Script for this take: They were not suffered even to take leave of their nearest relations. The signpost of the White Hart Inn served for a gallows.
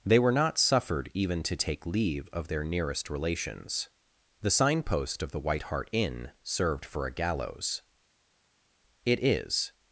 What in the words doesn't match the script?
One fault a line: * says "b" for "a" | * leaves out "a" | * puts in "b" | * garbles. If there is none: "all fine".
* puts in "It is"